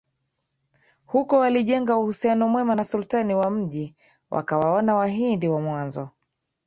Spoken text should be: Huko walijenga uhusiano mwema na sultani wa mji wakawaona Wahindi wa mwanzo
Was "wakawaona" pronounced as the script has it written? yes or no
yes